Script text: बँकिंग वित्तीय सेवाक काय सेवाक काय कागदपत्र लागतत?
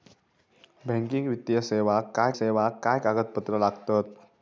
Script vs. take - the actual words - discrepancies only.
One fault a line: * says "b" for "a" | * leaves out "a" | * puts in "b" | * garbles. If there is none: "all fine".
all fine